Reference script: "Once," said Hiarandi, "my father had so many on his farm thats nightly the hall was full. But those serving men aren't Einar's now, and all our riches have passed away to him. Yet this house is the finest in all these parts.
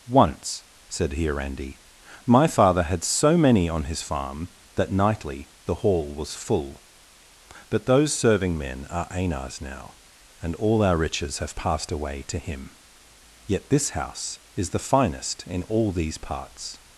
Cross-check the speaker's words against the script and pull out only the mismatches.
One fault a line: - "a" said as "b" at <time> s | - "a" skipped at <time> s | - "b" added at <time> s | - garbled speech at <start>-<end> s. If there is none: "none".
- "thats" said as "that" at 4.8 s
- "aren't" said as "are" at 8.9 s